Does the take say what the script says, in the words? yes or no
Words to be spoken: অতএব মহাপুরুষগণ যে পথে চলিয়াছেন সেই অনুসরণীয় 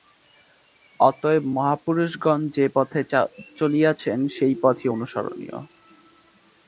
no